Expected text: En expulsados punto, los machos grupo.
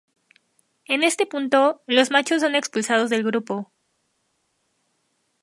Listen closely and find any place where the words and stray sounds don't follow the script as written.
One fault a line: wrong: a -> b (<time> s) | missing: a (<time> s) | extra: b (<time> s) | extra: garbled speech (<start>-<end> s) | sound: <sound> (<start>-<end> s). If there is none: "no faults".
wrong: expulsados -> este (1.0 s)
extra: son expulsados del (2.4 s)